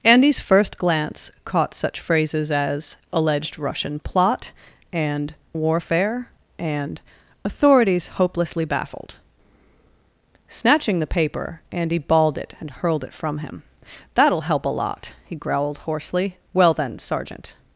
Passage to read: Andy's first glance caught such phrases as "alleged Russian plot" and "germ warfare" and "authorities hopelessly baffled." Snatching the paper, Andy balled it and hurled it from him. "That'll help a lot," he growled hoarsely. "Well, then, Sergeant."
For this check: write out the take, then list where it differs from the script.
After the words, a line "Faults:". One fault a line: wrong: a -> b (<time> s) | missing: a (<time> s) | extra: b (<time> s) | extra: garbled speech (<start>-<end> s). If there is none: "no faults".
Andy's first glance caught such phrases as "alleged Russian plot" and "warfare" and "authorities hopelessly baffled." Snatching the paper, Andy balled it and hurled it from him. "That'll help a lot," he growled hoarsely. "Well, then, Sergeant."
Faults:
missing: germ (5.3 s)